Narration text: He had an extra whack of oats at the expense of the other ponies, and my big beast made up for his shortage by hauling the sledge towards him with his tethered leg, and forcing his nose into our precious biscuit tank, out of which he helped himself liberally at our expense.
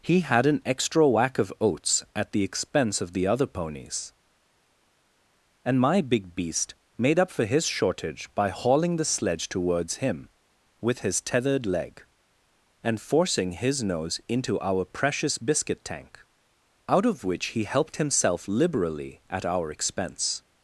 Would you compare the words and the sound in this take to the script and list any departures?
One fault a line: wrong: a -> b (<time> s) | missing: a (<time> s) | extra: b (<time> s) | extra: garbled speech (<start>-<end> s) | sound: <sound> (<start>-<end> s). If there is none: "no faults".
no faults